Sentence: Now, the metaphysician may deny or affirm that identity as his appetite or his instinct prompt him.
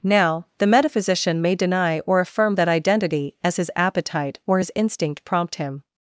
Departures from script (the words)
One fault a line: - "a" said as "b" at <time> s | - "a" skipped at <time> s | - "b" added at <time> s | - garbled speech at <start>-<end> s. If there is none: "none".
none